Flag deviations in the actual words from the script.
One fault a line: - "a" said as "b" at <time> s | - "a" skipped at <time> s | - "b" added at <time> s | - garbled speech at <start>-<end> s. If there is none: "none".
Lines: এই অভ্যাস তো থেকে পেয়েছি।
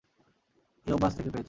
none